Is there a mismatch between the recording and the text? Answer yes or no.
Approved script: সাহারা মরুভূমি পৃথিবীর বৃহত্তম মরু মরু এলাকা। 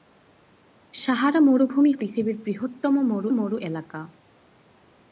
no